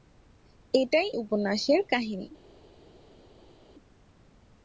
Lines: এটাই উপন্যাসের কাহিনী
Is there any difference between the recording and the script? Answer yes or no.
no